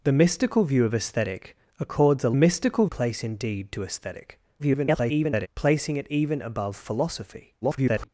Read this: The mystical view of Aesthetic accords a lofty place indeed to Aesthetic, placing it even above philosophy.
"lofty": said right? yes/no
no